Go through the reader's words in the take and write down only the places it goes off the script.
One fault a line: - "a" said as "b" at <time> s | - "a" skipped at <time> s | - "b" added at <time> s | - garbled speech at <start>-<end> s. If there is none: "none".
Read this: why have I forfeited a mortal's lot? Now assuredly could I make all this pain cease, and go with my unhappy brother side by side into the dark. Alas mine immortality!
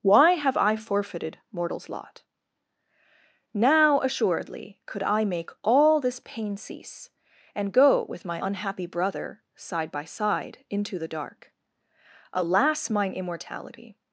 - "a" skipped at 1.4 s